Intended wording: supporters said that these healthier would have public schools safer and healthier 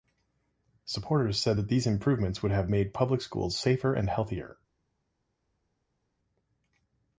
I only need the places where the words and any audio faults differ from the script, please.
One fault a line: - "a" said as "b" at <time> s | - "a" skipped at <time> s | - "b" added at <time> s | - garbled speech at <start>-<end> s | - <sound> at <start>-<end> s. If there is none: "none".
- "healthier" said as "improvements" at 1.8 s
- "made" added at 2.7 s